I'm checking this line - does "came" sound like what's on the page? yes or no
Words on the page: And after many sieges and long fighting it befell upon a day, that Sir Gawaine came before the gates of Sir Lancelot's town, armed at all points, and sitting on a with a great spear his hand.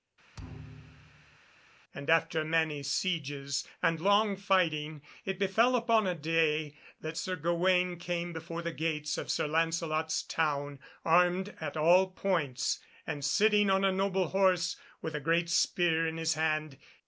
yes